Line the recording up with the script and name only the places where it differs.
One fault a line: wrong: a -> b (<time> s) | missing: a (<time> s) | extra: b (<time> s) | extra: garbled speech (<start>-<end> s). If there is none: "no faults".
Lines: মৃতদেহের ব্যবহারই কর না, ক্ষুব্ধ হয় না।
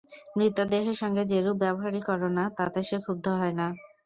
extra: সঙ্গে যেরূপ (1.0 s)
extra: তাতে সে (2.6 s)